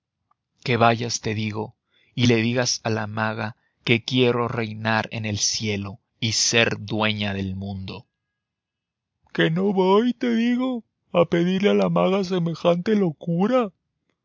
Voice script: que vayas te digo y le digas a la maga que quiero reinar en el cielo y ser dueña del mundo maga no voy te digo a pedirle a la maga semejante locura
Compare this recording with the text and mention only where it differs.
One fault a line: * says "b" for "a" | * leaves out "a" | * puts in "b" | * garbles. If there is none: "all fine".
* says "que" for "maga"